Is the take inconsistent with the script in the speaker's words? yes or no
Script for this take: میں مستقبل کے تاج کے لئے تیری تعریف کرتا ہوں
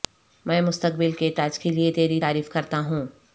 no